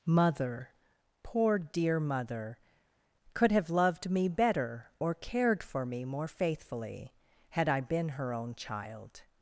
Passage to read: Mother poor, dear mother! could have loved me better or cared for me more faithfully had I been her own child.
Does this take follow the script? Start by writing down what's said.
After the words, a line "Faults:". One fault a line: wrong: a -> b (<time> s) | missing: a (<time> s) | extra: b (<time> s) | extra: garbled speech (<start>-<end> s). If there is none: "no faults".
Mother poor, dear mother! could have loved me better or cared for me more faithfully had I been her own child.
Faults:
no faults